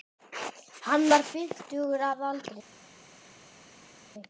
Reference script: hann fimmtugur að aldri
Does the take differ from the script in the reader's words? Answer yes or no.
yes